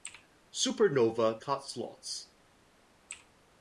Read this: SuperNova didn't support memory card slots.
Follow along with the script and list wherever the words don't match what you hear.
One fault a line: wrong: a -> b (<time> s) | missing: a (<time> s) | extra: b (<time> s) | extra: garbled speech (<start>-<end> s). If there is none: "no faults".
missing: didn't support memory (1.4 s)